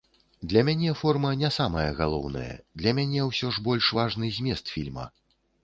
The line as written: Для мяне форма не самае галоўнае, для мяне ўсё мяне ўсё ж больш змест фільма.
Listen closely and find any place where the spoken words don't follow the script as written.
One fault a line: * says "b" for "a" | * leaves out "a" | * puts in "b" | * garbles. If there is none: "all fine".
* leaves out "мяне ўсё"
* puts in "важны"